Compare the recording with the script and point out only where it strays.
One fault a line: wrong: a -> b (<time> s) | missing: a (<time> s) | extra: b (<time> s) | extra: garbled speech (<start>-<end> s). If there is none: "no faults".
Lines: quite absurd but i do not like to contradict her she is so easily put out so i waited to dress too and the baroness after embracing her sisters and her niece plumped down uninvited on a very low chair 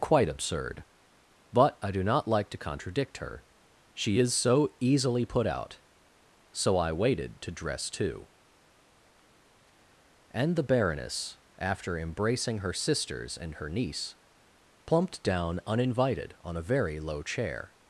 no faults